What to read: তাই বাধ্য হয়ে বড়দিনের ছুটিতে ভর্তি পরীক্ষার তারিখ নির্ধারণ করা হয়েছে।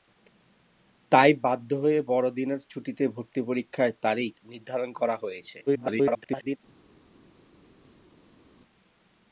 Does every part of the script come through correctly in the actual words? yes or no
no